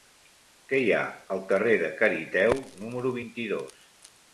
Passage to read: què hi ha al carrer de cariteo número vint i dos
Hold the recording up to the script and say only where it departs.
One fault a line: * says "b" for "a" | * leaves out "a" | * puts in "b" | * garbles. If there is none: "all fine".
all fine